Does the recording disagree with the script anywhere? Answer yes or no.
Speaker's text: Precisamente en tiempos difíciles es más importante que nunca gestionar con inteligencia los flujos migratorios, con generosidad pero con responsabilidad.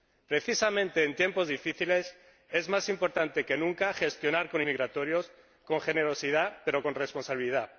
yes